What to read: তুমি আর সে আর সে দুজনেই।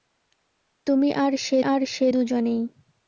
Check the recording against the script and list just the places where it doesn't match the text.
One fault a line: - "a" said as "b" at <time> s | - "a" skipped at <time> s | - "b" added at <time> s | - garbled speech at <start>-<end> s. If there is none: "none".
none